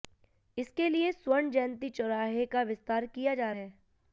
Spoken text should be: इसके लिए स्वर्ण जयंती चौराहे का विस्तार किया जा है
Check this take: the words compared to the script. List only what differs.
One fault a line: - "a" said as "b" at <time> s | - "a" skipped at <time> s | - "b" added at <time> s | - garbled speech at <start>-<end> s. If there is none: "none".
none